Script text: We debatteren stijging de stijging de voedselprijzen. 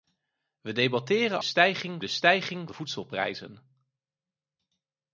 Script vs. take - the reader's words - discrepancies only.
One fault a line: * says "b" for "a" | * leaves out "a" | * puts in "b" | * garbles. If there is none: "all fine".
all fine